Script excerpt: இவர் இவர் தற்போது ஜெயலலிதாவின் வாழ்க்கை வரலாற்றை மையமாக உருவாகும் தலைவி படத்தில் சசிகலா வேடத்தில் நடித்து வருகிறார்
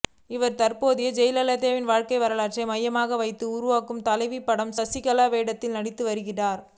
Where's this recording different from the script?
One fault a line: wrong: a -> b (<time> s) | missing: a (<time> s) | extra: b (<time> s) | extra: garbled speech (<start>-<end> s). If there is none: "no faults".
missing: இவர் (0.6 s)
extra: வைத்து (3.2 s)